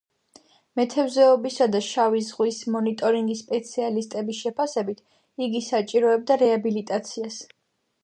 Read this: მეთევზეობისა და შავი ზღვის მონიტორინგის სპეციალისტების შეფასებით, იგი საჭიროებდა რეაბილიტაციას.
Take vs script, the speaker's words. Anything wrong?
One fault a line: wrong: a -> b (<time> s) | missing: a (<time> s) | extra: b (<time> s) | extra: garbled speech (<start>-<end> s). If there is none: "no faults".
no faults